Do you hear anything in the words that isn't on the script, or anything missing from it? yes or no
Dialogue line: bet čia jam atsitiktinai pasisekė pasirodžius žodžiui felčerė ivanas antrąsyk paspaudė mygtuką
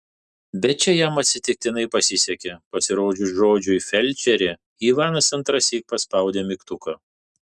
no